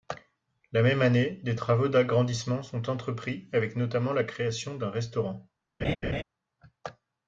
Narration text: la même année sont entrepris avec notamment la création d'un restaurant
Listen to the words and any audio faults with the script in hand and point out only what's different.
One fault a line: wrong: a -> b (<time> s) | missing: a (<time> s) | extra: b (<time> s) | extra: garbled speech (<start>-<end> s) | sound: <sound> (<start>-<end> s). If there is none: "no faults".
extra: des travaux d'agrandissement (1.4 s)
sound: laugh (5.8-6.2 s)